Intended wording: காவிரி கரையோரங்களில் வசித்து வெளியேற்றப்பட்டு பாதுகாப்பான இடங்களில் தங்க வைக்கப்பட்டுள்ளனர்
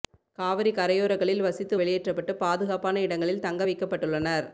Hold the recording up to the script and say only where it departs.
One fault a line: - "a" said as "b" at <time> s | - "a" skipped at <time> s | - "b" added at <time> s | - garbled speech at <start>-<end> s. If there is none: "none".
none